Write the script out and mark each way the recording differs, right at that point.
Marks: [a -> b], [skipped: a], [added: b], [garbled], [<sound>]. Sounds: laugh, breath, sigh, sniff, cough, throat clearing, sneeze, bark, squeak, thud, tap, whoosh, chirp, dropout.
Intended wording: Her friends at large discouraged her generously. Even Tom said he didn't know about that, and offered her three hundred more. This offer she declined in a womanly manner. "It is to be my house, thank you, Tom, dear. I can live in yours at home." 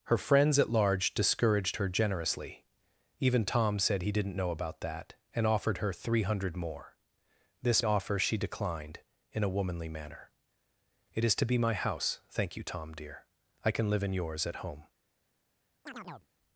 Her friends at large discouraged her generously. Even Tom said he didn't know about that, and offered her three hundred more. This offer she declined in a womanly manner. "It is to be my house, thank you, Tom, dear. I can live in yours at home." [chirp]